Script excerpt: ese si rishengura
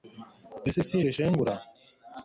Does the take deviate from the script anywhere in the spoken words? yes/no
no